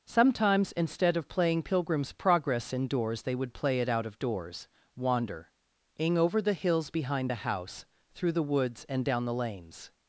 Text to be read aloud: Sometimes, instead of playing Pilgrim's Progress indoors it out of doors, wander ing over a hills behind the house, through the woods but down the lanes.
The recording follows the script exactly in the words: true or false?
false